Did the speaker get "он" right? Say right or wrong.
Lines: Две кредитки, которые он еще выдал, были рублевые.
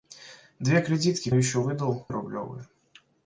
wrong